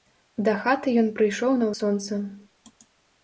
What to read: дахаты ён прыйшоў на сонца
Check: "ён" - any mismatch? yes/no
no